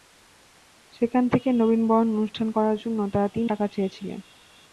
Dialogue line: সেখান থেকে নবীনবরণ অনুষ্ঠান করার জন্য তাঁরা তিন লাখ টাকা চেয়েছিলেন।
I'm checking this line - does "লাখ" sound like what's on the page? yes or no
no